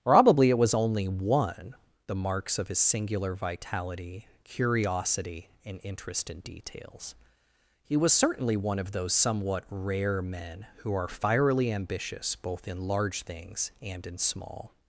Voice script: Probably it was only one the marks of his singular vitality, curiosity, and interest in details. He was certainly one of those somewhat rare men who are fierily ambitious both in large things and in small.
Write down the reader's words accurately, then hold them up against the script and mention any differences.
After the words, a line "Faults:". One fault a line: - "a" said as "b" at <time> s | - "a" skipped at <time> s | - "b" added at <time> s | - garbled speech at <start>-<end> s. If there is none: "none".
Probably it was only one the marks of his singular vitality, curiosity, and interest in details. He was certainly one of those somewhat rare men who are fierily ambitious both in large things and in small.
Faults:
none